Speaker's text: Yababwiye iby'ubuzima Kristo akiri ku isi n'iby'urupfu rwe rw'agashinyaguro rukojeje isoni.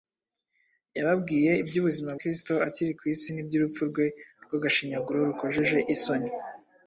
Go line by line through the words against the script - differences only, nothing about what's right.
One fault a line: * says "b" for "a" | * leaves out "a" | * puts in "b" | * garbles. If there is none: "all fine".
all fine